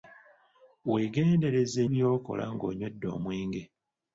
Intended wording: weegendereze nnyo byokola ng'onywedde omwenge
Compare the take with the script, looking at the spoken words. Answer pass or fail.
fail